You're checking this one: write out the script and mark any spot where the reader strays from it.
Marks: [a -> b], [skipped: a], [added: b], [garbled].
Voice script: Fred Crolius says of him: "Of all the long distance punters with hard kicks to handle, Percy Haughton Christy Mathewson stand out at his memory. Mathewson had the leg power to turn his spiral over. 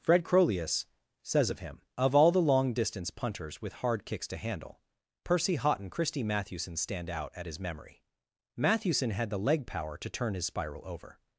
Fred Crolius says of him: "Of all the long distance punters with hard kicks to handle, Percy Haughton Christy Mathewson stand out at his memory. Mathewson had the leg power to turn his spiral over.